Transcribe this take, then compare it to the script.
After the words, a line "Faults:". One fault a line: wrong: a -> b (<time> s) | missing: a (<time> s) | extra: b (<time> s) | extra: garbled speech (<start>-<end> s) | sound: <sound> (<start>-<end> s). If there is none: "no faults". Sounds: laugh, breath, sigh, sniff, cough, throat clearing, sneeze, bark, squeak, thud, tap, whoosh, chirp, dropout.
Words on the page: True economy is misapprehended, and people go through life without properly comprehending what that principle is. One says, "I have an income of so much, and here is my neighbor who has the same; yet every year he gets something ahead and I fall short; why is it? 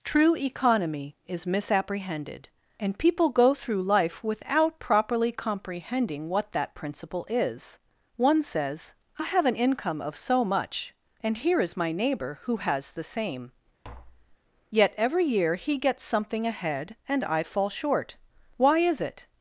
True economy is misapprehended, and people go through life without properly comprehending what that principle is. One says, "I have an income of so much, and here is my neighbor who has the same; yet every year he gets something ahead and I fall short; why is it?
Faults:
sound: tap (13.8-14.4 s)